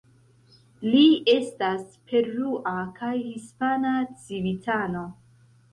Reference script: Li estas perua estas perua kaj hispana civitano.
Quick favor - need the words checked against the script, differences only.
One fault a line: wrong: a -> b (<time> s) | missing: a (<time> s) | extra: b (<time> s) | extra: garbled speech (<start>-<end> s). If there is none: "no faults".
missing: estas perua (2.8 s)